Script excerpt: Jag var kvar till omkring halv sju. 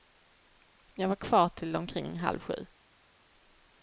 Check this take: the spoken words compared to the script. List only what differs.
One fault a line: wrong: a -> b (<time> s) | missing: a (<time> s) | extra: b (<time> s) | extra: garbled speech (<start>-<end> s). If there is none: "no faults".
no faults